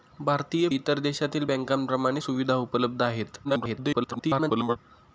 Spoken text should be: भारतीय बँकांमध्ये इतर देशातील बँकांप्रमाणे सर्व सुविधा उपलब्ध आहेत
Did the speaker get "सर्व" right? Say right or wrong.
wrong